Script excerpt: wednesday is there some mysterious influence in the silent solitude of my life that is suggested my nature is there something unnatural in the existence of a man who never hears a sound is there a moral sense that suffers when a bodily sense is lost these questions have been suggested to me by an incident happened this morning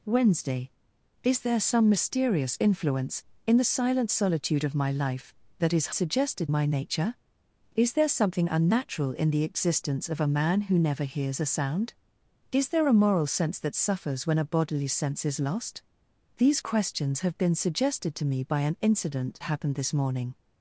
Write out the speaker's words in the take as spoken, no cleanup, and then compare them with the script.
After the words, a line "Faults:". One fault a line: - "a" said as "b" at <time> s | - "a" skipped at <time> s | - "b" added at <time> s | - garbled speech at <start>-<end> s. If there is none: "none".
wednesday is there some mysterious influence in the silent solitude of my life that is suggested my nature is there something unnatural in the existence of a man who never hears a sound is there a moral sense that suffers when a bodily sense is lost these questions have been suggested to me by an incident happened this morning
Faults:
none